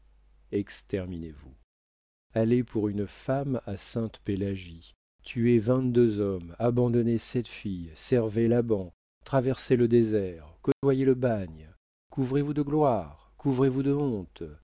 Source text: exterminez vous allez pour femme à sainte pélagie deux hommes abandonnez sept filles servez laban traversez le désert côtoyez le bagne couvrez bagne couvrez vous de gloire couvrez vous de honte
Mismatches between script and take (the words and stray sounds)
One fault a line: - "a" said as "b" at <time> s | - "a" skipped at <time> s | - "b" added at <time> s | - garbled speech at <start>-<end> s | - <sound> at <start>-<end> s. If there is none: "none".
- "une" added at 2.9 s
- "tuez vingt" added at 5.2 s
- dropout at 10.7-10.8 s
- "bagne couvrez" skipped at 12.4 s